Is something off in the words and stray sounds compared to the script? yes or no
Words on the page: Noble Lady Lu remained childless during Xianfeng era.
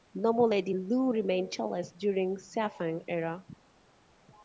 no